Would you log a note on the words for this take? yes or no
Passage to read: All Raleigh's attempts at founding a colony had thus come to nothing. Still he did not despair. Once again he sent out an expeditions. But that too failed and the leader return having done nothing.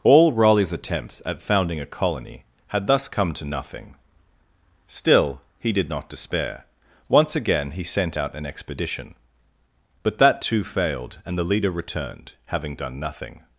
yes